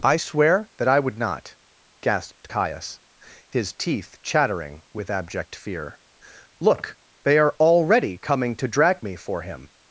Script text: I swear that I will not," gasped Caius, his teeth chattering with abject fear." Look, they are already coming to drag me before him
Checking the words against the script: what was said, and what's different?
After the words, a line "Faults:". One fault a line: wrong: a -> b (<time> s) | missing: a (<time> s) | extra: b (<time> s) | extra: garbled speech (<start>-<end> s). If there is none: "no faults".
I swear that I would not," gasped Caius, his teeth chattering with abject fear." Look, they are already coming to drag me for him
Faults:
wrong: will -> would (1.0 s)
wrong: before -> for (9.2 s)